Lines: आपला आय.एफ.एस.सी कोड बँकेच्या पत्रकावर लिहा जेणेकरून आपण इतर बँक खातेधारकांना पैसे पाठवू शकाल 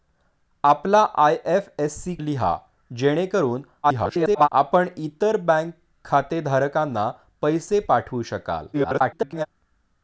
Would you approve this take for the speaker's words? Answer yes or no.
no